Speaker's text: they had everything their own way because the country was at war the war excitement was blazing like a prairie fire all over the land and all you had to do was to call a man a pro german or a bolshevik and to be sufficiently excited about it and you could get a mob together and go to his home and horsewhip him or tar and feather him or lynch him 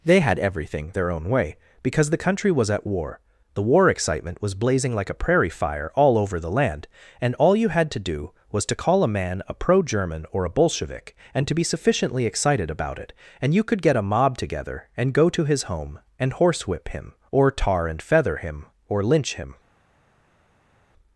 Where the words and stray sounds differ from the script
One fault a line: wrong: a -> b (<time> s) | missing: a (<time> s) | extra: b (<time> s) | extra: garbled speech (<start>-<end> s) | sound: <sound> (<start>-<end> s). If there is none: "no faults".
no faults